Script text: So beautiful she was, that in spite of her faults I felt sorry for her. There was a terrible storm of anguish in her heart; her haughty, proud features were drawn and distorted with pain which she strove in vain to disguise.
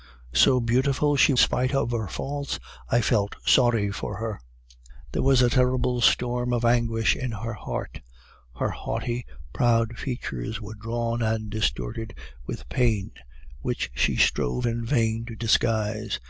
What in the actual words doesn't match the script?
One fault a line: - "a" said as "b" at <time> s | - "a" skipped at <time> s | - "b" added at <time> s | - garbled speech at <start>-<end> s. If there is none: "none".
- "was that in" skipped at 1.4 s